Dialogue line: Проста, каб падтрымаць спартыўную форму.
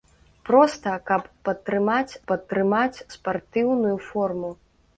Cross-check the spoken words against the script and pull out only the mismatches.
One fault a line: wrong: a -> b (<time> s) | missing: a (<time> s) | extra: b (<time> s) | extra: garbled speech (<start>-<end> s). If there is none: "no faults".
extra: падтрымаць (2.3 s)